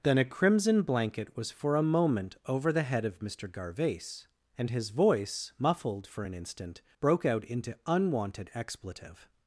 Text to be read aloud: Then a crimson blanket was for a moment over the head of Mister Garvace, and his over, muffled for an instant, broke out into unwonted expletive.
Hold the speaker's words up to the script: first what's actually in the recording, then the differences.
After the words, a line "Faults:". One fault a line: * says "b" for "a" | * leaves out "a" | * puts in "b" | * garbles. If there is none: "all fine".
Then a crimson blanket was for a moment over the head of Mister Garvace, and his voice, muffled for an instant, broke out into unwonted expletive.
Faults:
* says "voice" for "over"